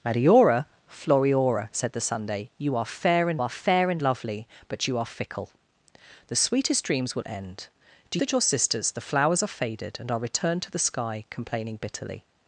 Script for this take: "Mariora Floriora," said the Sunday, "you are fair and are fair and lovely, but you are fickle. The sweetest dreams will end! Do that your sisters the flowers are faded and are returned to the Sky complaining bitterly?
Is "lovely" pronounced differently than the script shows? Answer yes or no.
no